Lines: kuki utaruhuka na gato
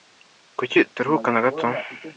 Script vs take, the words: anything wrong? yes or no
no